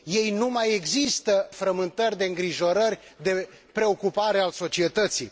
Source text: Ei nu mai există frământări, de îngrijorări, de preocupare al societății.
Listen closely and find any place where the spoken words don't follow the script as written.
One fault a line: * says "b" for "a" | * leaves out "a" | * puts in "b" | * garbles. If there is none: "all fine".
all fine